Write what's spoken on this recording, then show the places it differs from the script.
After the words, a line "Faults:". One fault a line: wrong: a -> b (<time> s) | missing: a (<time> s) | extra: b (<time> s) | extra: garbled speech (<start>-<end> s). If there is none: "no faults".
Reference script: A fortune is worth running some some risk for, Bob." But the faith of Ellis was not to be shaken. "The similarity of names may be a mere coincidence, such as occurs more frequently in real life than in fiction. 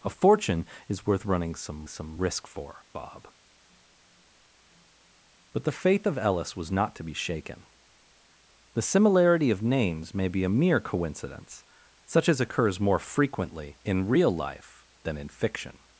A fortune is worth running some some risk for, Bob." But the faith of Ellis was not to be shaken. "The similarity of names may be a mere coincidence, such as occurs more frequently in real life than in fiction.
Faults:
no faults